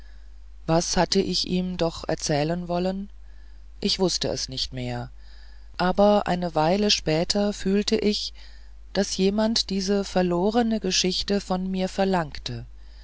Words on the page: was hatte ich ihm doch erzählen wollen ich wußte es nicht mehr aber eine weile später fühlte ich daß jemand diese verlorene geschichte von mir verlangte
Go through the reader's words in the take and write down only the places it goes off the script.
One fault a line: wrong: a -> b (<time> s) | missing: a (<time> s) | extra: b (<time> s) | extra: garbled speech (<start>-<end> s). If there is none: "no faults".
no faults